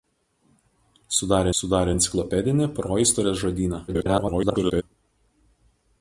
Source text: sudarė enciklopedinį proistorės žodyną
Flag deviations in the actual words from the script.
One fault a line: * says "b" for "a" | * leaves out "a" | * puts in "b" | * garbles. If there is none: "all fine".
* puts in "sudarė"
* garbles